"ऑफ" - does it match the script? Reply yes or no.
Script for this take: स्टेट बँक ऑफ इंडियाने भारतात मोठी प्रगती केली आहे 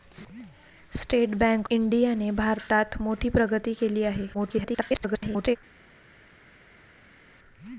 no